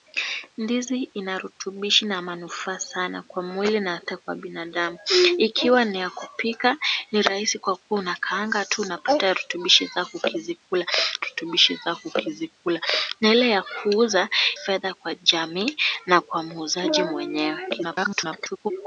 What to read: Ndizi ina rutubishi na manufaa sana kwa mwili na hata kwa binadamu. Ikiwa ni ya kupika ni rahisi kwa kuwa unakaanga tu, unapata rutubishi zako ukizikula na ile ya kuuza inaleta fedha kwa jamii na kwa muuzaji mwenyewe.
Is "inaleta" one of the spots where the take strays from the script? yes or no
yes